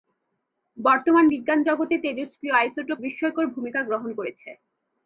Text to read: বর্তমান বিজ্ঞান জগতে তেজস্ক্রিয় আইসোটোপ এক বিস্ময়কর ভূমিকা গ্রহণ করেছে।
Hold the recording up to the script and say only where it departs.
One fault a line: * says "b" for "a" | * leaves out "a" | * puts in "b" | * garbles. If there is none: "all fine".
* leaves out "এক"